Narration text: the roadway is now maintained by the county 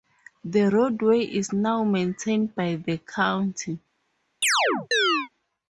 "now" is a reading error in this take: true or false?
false